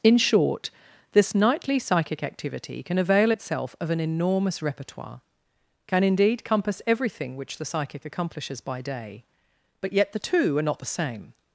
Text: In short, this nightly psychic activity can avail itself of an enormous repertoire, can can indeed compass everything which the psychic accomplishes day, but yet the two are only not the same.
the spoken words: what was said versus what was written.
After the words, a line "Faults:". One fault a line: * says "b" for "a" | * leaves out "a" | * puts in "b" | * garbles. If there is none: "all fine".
In short, this nightly psychic activity can avail itself of an enormous repertoire, can indeed compass everything which the psychic accomplishes by day, but yet the two are not the same.
Faults:
* leaves out "can"
* puts in "by"
* leaves out "only"